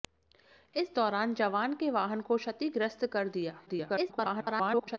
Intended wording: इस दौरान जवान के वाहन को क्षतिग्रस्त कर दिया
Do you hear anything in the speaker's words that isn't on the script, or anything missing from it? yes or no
yes